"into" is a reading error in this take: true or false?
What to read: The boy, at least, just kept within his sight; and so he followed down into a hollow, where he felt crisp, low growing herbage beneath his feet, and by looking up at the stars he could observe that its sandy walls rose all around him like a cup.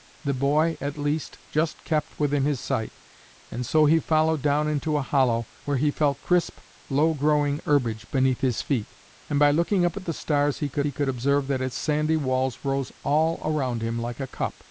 false